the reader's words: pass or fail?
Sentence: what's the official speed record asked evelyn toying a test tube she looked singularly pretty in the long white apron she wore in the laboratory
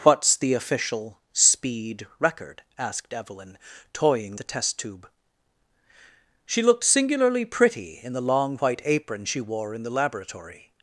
pass